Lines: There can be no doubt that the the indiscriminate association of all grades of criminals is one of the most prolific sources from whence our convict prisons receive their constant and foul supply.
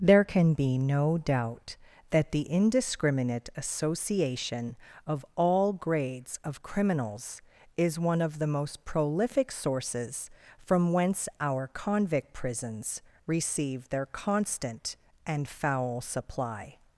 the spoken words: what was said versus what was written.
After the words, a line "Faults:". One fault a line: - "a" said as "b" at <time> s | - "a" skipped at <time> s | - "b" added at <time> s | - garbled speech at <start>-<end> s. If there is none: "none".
There can be no doubt that the indiscriminate association of all grades of criminals is one of the most prolific sources from whence our convict prisons receive their constant and foul supply.
Faults:
- "the" skipped at 2.5 s